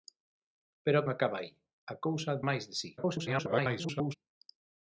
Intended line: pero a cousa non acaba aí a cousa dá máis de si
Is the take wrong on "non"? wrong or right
wrong